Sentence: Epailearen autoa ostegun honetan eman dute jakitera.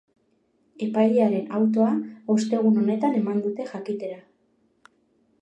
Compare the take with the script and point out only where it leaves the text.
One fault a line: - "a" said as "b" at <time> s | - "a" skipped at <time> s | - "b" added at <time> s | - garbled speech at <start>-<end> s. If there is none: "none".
none